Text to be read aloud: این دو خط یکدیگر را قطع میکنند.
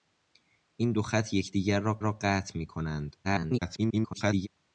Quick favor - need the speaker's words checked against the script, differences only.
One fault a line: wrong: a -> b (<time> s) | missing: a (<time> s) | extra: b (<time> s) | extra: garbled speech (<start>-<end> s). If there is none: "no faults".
extra: را (2.0 s)
extra: garbled speech (3.2-4.5 s)